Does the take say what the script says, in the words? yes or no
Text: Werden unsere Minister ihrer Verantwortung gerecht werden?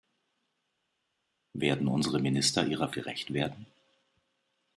no